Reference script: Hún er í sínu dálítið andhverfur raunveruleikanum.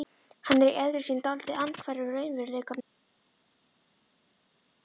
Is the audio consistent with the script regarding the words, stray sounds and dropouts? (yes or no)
no